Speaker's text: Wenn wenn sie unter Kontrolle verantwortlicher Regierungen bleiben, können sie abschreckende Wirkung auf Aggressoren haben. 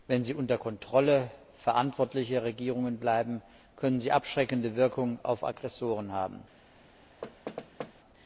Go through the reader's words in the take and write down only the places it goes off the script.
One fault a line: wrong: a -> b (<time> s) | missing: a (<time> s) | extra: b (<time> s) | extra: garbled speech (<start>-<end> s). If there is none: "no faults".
missing: wenn (0.2 s)